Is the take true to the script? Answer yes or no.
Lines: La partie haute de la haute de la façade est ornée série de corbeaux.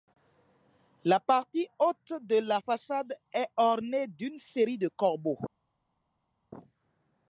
no